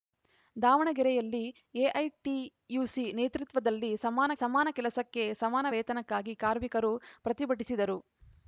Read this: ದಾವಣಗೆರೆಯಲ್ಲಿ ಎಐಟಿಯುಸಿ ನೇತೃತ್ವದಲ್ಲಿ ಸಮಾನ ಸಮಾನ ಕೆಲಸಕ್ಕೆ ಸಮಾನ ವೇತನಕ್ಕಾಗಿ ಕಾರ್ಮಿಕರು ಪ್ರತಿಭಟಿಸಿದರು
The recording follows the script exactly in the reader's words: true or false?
true